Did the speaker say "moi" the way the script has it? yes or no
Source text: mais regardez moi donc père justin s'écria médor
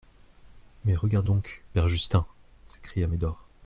no